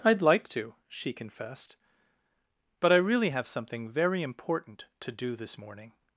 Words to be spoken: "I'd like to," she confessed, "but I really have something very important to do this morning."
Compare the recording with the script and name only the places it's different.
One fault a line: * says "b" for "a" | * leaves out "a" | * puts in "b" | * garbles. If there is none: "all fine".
all fine